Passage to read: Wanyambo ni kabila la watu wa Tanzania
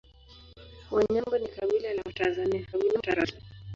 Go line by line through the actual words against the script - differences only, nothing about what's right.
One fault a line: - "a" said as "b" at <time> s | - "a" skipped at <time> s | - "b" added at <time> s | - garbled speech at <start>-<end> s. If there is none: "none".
- "watu" skipped at 2.1 s
- garbled speech at 2.7-3.4 s